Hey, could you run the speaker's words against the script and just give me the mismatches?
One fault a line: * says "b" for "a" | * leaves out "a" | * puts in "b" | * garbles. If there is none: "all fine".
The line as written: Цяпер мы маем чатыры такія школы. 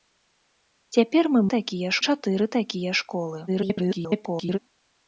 * says "такія" for "маем"
* garbles